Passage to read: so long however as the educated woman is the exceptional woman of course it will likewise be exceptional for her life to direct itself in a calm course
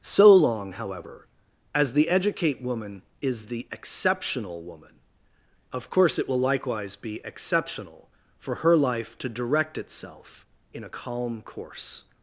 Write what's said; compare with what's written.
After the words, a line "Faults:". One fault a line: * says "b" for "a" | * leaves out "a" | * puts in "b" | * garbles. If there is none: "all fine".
so long however as the educate woman is the exceptional woman of course it will likewise be exceptional for her life to direct itself in a calm course
Faults:
* says "educate" for "educated"